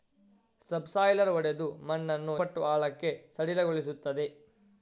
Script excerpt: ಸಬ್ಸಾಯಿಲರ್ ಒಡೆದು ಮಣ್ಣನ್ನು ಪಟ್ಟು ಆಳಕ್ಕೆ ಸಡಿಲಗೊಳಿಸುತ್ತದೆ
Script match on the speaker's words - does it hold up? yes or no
yes